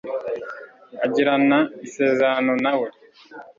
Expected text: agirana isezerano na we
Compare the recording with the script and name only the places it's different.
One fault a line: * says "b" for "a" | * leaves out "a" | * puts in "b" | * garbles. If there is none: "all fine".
all fine